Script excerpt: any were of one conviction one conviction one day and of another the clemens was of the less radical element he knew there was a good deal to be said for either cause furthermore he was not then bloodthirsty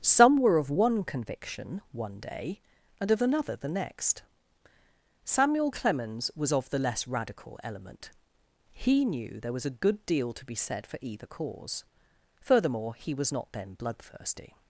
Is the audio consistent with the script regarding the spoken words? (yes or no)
no